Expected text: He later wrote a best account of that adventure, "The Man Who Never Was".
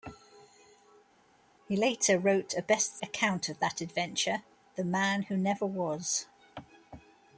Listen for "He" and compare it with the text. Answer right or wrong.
right